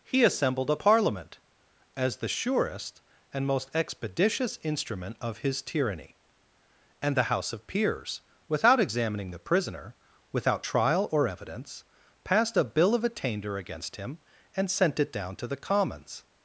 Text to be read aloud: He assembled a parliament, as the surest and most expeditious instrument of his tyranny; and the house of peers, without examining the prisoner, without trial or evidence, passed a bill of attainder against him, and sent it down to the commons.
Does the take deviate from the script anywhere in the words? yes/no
no